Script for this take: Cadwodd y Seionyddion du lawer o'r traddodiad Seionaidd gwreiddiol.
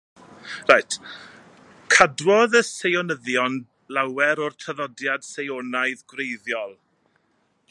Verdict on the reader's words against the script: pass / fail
fail